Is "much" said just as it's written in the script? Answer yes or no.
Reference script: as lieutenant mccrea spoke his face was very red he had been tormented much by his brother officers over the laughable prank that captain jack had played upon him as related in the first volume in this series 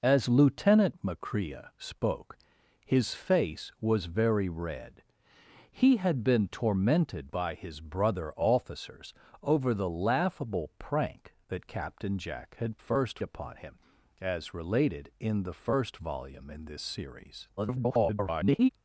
no